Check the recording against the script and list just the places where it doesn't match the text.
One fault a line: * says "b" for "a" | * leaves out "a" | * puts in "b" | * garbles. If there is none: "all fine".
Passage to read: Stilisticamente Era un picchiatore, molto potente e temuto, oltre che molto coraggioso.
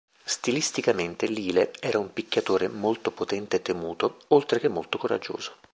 * puts in "Lyle"